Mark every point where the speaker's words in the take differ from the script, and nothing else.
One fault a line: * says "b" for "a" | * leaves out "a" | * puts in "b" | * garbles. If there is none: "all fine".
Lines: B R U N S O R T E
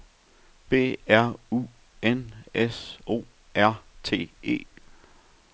all fine